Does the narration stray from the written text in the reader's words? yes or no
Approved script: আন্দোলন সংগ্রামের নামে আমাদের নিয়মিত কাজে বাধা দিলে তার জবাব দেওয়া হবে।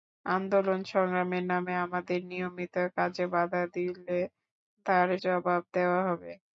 no